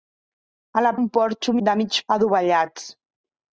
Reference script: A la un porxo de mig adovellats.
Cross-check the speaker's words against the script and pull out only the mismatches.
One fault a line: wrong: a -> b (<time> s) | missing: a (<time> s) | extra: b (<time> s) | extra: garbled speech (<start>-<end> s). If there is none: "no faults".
no faults